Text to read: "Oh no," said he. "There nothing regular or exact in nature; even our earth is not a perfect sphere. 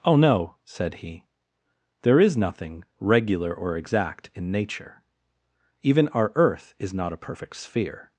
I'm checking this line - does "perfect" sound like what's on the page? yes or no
yes